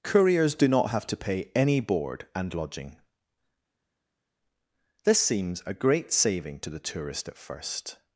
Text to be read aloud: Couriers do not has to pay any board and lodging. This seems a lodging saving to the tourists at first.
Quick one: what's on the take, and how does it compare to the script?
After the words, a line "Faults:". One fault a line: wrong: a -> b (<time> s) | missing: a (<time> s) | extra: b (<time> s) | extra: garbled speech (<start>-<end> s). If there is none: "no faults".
Couriers do not have to pay any board and lodging. This seems a great saving to the tourist at first.
Faults:
wrong: has -> have (0.9 s)
wrong: lodging -> great (5.7 s)
wrong: tourists -> tourist (6.8 s)